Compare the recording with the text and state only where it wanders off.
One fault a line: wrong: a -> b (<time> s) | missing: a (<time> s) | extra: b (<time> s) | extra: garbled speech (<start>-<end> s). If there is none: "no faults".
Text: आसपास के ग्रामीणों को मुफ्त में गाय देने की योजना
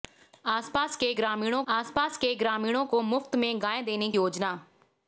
extra: आसपास के ग्रामीणों (1.7 s)
missing: की (4.1 s)